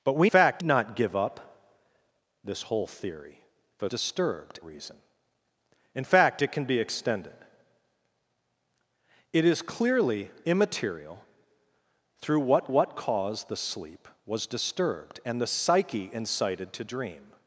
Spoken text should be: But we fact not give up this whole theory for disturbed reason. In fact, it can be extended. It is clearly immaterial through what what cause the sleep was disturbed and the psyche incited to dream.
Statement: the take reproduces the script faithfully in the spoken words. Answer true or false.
true